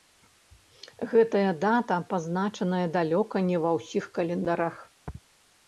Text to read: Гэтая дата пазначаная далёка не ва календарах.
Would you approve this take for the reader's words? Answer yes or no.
no